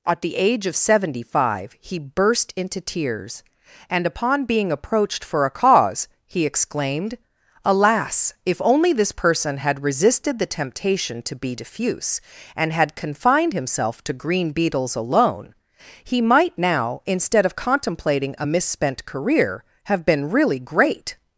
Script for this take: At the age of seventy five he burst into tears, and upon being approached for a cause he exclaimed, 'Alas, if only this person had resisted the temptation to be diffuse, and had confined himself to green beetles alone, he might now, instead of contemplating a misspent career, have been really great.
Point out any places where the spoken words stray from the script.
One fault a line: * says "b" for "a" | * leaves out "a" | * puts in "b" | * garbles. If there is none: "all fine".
all fine